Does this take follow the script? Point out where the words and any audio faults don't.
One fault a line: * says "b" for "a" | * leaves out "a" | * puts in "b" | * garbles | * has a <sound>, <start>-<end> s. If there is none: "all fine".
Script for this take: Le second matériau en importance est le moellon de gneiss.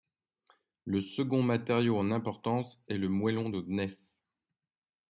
all fine